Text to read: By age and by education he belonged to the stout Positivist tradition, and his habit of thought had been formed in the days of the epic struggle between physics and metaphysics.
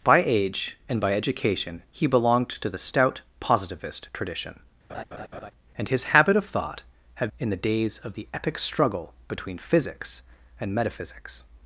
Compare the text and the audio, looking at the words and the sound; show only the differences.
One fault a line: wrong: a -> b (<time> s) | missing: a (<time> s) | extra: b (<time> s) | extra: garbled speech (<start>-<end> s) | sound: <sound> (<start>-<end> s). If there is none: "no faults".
sound: laugh (4.9-5.5 s)
missing: been formed (7.3 s)